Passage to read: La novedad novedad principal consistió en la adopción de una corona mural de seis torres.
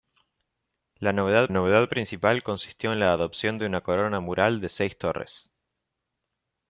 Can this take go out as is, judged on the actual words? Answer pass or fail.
pass